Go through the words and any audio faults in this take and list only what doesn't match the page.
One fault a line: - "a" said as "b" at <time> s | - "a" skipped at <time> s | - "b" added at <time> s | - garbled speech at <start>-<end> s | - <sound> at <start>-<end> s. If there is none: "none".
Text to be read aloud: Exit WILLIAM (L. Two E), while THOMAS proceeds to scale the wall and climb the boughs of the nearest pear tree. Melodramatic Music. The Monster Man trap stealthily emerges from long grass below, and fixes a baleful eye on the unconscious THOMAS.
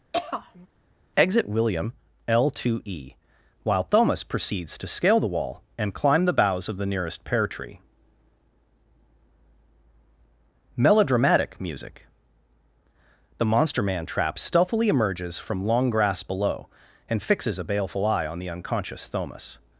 - throat clearing at 0.1-0.7 s